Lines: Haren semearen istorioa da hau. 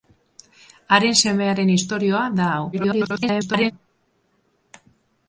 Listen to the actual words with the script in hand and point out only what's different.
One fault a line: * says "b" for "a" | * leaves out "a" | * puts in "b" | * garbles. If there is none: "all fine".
* garbles